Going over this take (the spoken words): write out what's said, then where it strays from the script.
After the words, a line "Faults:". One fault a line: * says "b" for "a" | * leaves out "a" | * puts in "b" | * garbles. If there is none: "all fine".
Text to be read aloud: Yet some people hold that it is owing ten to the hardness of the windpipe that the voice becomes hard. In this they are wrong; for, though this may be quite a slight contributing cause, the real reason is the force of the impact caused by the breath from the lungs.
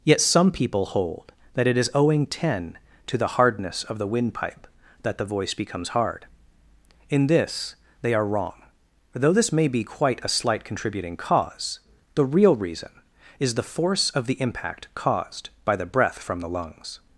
Yet some people hold that it is owing ten to the hardness of the windpipe that the voice becomes hard. In this they are wrong; though this may be quite a slight contributing cause, the real reason is the force of the impact caused by the breath from the lungs.
Faults:
* leaves out "for"